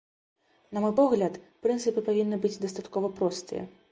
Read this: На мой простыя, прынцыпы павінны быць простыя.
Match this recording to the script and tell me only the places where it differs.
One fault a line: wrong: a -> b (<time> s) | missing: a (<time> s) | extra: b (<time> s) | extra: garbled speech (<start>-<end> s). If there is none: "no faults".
wrong: простыя -> погляд (1.0 s)
extra: дастаткова (2.7 s)